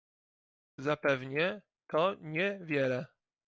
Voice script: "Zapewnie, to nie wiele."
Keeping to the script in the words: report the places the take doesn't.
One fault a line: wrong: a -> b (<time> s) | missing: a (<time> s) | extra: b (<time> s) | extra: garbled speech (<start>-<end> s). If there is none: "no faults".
no faults